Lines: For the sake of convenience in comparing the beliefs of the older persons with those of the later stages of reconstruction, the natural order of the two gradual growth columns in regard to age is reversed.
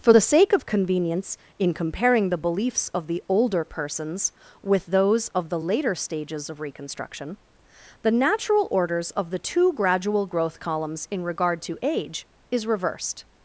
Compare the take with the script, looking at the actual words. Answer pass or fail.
fail